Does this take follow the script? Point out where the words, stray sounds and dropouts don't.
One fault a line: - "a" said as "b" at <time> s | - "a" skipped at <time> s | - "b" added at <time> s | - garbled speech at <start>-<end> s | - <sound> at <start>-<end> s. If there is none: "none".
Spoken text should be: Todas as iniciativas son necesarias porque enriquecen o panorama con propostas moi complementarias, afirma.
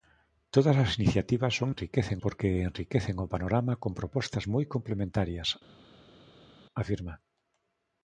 - "necesarias" said as "enriquecen" at 1.7 s